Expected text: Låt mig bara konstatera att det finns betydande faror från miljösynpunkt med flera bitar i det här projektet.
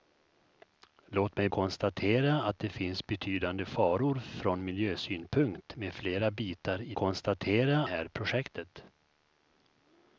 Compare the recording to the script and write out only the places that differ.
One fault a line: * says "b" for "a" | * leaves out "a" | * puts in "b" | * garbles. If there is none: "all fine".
* leaves out "bara"
* says "konstatera" for "det"